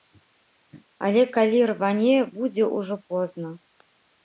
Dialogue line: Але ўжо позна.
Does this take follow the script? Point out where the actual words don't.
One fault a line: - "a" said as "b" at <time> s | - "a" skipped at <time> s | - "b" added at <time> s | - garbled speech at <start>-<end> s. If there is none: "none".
- "калі рване будзе" added at 1.4 s